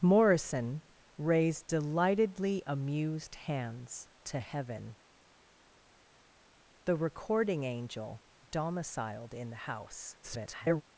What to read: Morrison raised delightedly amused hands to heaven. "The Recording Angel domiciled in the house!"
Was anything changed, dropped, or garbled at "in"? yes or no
no